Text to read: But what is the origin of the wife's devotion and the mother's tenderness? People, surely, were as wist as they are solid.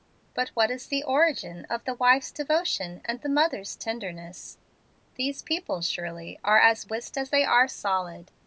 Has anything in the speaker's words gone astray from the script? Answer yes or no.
yes